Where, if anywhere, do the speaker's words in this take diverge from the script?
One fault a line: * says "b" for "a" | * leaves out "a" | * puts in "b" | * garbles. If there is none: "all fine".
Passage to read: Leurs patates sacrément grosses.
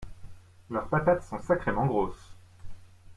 * puts in "sont"